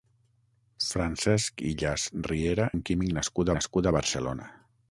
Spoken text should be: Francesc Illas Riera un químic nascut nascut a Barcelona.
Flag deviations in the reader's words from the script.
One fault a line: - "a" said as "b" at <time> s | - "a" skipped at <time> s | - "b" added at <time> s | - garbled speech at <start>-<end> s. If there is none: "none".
none